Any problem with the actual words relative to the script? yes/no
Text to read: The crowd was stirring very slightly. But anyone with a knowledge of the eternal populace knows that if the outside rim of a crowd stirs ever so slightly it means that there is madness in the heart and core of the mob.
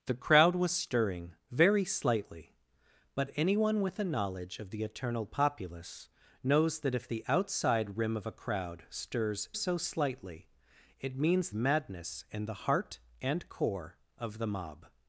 yes